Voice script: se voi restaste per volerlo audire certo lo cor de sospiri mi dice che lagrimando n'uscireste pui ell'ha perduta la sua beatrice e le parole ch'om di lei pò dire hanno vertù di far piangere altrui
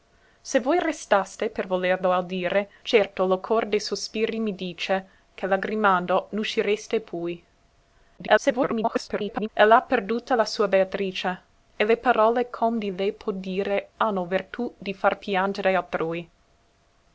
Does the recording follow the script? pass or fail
fail